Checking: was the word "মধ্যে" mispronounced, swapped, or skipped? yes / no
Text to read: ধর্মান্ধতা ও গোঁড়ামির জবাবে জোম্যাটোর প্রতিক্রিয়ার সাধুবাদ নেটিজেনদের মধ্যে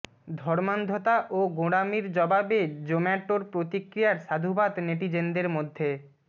no